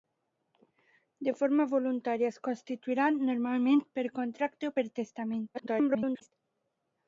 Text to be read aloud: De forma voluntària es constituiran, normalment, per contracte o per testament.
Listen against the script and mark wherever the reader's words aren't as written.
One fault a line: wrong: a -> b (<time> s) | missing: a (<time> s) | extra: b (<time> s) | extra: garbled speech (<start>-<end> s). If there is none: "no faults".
extra: garbled speech (5.5-6.3 s)